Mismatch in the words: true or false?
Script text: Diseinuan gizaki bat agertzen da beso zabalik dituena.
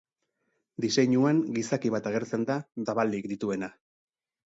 true